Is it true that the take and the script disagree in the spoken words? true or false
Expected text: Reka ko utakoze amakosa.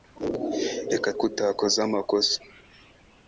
false